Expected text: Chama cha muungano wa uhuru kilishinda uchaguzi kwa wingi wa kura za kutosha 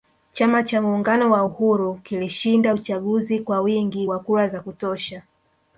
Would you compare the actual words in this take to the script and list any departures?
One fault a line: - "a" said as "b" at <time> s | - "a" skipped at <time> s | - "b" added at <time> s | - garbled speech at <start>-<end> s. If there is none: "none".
none